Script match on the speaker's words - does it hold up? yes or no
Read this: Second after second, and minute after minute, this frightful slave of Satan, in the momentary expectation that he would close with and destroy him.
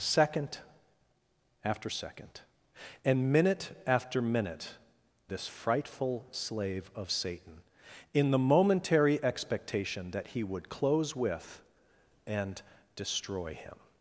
yes